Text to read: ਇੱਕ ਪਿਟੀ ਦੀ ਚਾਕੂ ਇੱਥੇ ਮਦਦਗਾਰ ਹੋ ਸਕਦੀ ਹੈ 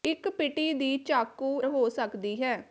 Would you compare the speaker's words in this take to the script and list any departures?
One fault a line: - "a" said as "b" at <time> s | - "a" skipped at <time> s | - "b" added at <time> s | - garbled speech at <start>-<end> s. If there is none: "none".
- "ਇੱਥੇ ਮਦਦਗਾਰ" skipped at 1.6 s